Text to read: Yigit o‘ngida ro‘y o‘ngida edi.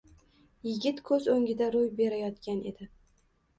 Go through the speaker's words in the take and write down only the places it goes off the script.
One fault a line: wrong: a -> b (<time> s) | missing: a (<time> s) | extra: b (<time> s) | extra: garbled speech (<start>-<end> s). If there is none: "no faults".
extra: ko‘z (1.1 s)
wrong: o‘ngida -> berayotgan (2.0 s)